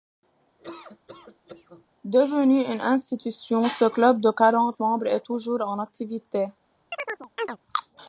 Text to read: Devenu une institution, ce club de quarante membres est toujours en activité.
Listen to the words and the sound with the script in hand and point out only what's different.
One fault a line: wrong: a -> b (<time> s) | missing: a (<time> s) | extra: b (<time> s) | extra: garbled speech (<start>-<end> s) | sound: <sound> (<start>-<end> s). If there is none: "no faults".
sound: laugh (0.6-1.8 s)
sound: chirp (6.9-7.6 s)